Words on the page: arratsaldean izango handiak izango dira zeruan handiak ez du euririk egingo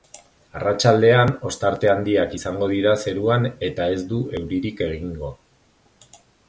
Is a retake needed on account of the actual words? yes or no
yes